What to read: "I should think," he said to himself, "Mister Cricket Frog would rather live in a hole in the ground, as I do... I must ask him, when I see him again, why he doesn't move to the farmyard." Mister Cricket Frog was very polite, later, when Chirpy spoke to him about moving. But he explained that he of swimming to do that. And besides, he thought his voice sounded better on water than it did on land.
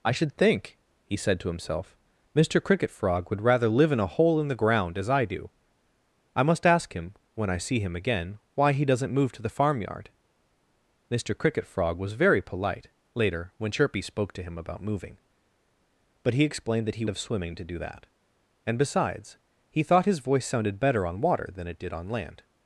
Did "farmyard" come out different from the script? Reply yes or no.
no